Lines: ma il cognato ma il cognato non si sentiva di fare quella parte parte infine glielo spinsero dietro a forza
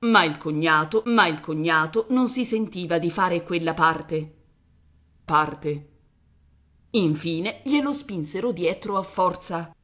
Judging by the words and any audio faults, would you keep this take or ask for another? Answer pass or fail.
pass